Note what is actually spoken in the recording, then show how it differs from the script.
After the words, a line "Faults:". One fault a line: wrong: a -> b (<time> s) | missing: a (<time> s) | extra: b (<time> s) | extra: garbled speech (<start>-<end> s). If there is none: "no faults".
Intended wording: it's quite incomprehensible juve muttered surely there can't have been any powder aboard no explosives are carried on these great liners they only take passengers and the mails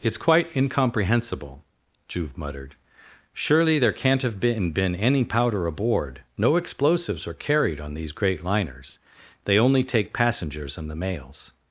it's quite incomprehensible juve muttered surely there can't have been been any powder aboard no explosives are carried on these great liners they only take passengers and the mails
Faults:
extra: been (4.7 s)